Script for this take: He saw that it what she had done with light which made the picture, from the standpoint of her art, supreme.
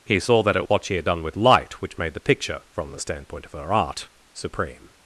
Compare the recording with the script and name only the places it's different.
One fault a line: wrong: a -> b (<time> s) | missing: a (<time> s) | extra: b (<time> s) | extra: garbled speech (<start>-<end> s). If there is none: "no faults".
no faults